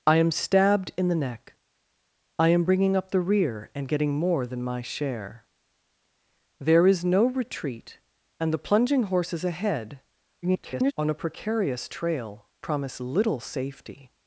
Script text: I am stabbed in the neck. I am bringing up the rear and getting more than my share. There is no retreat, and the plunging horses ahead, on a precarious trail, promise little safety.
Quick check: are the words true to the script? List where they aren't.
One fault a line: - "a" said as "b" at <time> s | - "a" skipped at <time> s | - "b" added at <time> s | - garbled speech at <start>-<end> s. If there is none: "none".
- garbled speech at 10.4-10.9 s